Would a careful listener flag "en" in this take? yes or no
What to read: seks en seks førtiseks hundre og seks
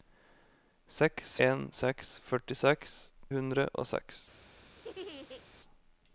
no